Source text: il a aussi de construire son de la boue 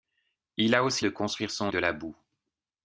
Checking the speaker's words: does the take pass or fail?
pass